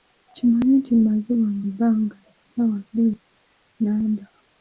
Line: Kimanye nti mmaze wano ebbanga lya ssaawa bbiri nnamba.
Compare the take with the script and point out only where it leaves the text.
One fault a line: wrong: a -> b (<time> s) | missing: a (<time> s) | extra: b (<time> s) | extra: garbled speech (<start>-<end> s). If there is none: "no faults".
no faults